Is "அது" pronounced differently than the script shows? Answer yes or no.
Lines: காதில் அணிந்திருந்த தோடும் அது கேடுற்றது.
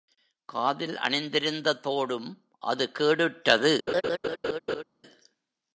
no